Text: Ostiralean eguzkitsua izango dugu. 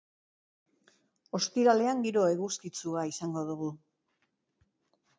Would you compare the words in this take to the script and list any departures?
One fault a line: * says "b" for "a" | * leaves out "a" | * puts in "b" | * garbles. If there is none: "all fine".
* puts in "giro"